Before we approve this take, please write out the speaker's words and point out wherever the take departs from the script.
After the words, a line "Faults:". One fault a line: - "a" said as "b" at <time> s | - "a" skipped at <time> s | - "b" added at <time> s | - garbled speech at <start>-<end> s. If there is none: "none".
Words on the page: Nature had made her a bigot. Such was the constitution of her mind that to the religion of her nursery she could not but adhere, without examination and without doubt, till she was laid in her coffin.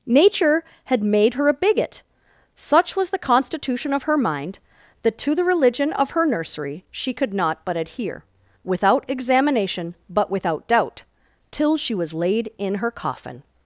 Nature had made her a bigot. Such was the constitution of her mind that to the religion of her nursery she could not but adhere, without examination but without doubt, till she was laid in her coffin.
Faults:
- "and" said as "but" at 10.1 s